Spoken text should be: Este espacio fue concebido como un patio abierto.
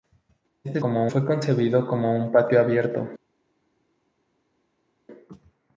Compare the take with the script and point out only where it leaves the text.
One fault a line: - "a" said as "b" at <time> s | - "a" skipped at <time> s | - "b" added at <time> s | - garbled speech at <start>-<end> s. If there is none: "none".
- "espacio" said as "como" at 0.8 s